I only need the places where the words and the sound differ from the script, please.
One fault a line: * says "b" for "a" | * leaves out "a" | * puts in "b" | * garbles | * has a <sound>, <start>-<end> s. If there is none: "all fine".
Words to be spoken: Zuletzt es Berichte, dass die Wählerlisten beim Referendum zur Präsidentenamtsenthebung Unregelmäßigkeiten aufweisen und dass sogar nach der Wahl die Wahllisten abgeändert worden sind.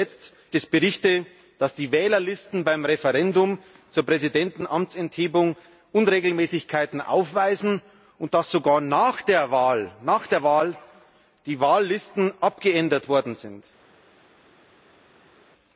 all fine